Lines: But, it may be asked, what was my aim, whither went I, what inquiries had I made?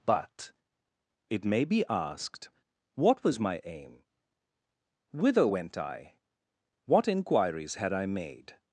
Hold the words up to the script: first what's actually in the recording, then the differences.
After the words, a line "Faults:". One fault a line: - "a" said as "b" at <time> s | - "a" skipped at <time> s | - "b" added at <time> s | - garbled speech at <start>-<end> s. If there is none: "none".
But, it may be asked, what was my aim, whither went I, what inquiries had I made?
Faults:
none